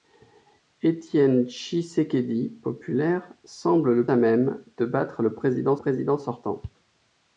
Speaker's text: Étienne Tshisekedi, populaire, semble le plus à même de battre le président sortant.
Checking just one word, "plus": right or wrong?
wrong